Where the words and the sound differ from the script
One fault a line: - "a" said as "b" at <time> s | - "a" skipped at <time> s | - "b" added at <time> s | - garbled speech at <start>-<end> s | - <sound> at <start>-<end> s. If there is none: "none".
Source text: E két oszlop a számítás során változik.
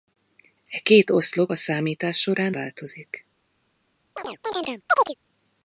- chirp at 4.2-5.1 s